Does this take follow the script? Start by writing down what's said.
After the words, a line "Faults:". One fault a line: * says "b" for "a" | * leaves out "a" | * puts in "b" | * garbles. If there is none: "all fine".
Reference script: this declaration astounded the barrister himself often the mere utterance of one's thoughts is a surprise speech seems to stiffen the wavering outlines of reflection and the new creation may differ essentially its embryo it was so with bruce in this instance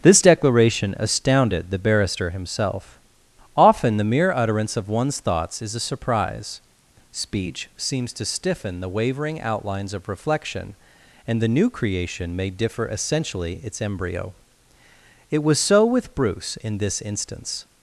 this declaration astounded the barrister himself often the mere utterance of one's thoughts is a surprise speech seems to stiffen the wavering outlines of reflection and the new creation may differ essentially its embryo it was so with bruce in this instance
Faults:
all fine